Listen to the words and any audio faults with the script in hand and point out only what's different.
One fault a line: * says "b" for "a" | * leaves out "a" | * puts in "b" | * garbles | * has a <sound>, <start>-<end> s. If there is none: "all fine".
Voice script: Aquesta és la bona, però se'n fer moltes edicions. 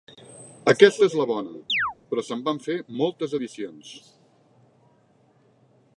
* has a chirp, 1.7-1.9 s
* puts in "van"